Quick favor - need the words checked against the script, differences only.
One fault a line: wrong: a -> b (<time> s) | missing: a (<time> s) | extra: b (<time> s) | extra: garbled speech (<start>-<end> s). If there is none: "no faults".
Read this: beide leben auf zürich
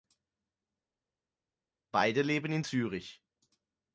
wrong: auf -> in (2.5 s)